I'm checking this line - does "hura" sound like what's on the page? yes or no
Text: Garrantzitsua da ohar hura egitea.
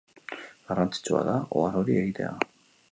no